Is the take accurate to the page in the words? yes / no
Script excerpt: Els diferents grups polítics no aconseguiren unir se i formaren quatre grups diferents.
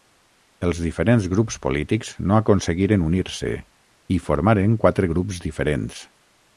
yes